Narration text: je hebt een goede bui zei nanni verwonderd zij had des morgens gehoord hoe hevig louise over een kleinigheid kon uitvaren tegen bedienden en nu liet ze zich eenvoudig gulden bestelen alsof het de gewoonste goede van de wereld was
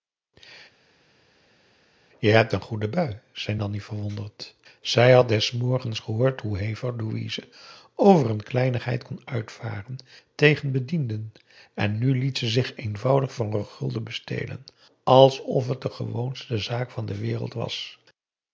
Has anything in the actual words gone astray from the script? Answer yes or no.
yes